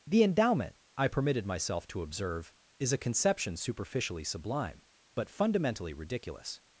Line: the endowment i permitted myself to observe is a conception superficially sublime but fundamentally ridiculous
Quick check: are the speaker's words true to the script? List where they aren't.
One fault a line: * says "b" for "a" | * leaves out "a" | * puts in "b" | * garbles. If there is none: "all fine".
all fine